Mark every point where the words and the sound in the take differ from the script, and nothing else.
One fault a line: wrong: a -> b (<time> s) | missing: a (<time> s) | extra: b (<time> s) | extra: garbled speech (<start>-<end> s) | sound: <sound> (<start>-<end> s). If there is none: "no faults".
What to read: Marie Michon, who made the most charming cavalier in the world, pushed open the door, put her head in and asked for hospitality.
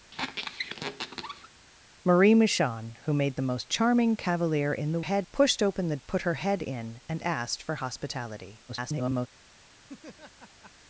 sound: squeak (0.1-1.5 s)
wrong: world -> head (5.0 s)
missing: door (6.0 s)
extra: garbled speech (8.7-9.3 s)
sound: laugh (9.8-10.7 s)